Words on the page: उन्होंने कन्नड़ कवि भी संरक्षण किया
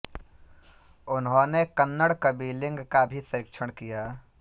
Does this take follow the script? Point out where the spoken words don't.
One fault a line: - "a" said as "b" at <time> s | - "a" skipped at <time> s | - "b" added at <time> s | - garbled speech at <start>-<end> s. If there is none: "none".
- "लिंग का" added at 2.5 s